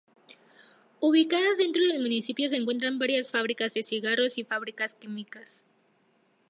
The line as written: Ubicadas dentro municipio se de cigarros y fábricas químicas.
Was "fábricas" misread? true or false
false